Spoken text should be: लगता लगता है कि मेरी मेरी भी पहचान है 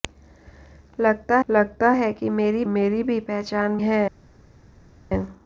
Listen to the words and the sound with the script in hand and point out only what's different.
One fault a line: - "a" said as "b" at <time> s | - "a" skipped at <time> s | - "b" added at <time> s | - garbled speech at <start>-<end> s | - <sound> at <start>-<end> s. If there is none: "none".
none